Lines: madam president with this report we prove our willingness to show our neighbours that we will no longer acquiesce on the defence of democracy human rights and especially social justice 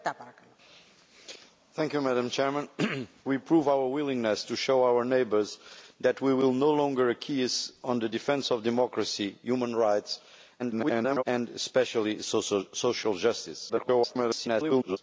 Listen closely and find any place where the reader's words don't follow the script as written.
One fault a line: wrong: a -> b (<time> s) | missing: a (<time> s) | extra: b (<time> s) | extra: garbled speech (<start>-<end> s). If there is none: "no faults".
missing: with this report (3.1 s)
extra: garbled speech (10.6-11.2 s)
extra: garbled speech (13.7-15.0 s)